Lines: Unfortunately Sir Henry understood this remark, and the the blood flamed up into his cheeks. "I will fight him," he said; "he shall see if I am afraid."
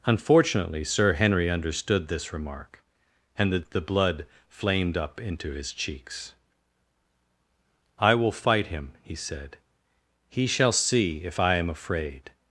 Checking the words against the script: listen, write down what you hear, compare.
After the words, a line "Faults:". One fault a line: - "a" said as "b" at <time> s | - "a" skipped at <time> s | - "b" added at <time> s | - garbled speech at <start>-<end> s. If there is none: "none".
Unfortunately Sir Henry understood this remark, and the the blood flamed up into his cheeks. "I will fight him," he said; "he shall see if I am afraid."
Faults:
none